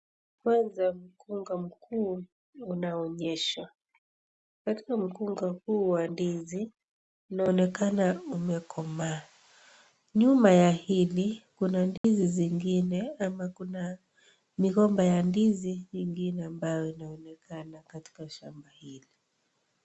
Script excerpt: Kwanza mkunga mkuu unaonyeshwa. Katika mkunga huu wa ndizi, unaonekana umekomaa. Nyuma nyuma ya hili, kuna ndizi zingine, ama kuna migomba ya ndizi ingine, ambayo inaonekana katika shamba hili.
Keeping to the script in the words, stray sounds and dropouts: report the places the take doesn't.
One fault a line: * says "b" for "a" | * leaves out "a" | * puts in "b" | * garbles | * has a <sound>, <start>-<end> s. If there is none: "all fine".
* leaves out "nyuma"
* has a dropout, 12.0-12.0 s